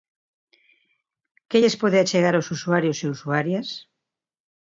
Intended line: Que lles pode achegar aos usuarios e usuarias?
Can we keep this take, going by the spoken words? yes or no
yes